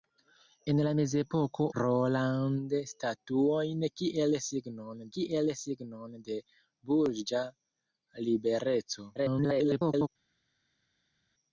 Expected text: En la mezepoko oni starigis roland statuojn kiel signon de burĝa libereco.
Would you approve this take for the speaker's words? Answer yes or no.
no